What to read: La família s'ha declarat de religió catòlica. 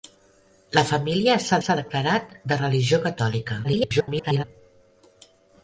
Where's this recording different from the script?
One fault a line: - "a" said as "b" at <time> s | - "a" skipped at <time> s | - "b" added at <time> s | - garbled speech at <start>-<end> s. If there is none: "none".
- "s'ha" added at 1.6 s
- garbled speech at 3.6-4.4 s